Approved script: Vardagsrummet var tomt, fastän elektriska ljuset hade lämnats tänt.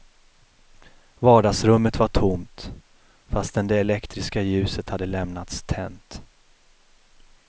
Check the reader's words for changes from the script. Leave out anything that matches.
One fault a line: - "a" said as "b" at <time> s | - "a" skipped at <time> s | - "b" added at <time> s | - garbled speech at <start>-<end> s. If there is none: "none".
- "det" added at 3.7 s